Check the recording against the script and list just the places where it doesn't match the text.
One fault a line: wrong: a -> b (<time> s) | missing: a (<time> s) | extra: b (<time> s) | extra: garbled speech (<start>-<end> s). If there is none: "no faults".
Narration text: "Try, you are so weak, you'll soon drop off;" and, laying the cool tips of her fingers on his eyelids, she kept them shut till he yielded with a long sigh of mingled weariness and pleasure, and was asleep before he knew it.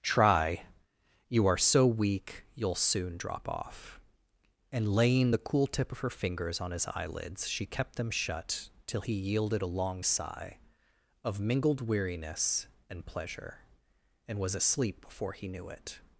wrong: tips -> tip (5.7 s)
missing: with (9.6 s)